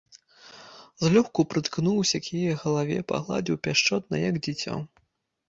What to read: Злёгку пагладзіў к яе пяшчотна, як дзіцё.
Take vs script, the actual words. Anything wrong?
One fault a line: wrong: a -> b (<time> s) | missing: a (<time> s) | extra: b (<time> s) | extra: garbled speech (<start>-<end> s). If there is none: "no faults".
wrong: пагладзіў -> прыткнуўся (1.5 s)
extra: галаве пагладзіў (2.6 s)